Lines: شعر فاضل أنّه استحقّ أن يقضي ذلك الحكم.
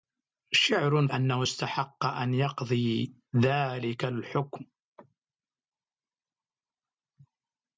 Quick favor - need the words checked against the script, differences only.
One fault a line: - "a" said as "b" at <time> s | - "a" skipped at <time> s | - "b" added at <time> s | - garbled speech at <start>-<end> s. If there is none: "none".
- "فاضل" skipped at 1.1 s